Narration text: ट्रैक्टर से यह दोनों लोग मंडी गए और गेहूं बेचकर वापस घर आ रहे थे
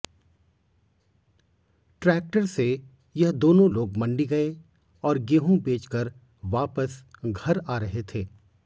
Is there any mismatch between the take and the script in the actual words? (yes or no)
no